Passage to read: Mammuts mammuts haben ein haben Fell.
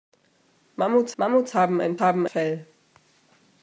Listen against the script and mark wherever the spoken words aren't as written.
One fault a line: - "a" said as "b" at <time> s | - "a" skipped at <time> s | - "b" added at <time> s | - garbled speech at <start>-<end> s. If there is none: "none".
none